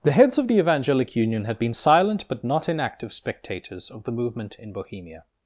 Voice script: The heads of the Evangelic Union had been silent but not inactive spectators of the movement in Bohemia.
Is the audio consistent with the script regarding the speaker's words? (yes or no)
yes